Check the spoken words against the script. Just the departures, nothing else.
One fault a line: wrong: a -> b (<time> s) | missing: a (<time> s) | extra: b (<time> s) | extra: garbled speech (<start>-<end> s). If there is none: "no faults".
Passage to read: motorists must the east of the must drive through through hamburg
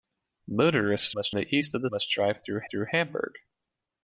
no faults